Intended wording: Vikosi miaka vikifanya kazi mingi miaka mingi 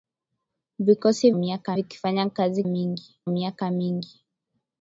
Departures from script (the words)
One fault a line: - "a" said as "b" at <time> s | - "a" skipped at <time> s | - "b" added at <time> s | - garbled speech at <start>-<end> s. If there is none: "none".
none